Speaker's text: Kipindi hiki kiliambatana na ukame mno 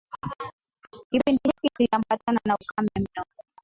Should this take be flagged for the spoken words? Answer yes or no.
no